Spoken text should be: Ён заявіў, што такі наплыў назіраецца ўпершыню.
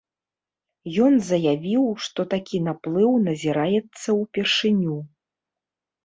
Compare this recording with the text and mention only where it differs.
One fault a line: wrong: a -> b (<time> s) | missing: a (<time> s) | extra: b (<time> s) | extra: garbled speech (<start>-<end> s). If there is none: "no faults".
no faults